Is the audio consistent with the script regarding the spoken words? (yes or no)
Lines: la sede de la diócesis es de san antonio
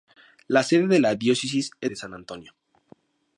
yes